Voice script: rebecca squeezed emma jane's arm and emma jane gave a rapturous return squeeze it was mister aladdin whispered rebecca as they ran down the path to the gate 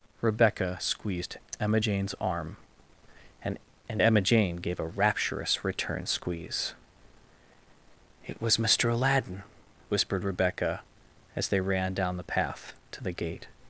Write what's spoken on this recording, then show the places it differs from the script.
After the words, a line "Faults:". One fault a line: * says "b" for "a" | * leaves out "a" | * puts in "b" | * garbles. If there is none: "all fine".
rebecca squeezed emma jane's arm and and emma jane gave a rapturous return squeeze it was mister aladdin whispered rebecca as they ran down the path to the gate
Faults:
* puts in "and"